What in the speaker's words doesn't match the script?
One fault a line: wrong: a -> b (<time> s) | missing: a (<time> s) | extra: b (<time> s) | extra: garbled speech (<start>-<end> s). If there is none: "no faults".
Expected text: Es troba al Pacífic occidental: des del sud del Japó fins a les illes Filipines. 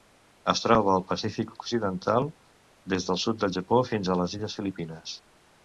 no faults